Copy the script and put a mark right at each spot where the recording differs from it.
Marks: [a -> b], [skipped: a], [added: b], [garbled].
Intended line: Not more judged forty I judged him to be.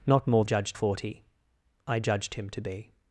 Not more judged forty I judged him to be.